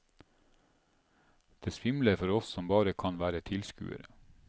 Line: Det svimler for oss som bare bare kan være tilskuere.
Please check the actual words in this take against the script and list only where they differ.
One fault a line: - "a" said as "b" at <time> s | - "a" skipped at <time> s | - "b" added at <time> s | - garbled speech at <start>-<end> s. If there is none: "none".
- "bare" skipped at 2.9 s